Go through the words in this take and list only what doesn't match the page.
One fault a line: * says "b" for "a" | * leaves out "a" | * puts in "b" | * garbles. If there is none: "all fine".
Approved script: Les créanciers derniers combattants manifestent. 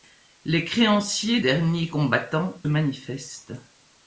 all fine